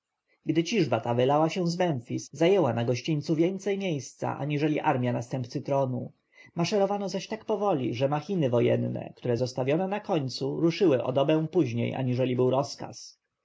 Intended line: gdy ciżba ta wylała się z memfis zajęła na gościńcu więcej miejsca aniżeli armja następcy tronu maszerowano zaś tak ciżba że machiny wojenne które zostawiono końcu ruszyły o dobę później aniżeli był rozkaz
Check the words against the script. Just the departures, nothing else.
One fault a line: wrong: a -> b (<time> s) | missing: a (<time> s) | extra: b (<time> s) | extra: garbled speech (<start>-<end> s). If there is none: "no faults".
wrong: ciżba -> powoli (7.5 s)
extra: na (9.9 s)